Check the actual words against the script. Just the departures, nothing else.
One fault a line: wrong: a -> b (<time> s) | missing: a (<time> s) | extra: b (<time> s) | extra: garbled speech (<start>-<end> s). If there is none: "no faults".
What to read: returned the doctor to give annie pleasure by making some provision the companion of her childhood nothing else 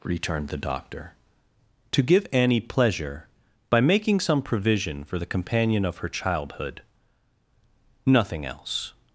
extra: for (5.0 s)